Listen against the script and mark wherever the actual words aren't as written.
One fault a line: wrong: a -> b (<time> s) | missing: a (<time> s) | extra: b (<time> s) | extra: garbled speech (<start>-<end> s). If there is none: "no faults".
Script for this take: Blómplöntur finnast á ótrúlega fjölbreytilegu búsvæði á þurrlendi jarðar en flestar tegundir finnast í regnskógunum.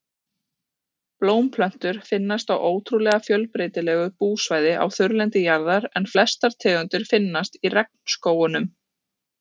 no faults